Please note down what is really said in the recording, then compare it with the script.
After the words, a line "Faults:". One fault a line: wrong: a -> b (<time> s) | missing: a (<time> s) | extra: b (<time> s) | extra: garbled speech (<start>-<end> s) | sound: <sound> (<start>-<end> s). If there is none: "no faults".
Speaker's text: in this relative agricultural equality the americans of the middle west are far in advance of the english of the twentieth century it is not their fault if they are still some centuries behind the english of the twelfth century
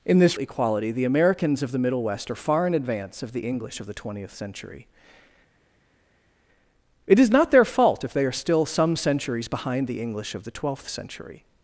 in this equality the americans of the middle west are far in advance of the english of the twentieth century it is not their fault if they are still some centuries behind the english of the twelfth century
Faults:
missing: relative agricultural (0.4 s)